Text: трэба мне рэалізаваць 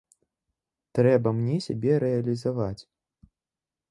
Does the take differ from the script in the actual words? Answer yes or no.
yes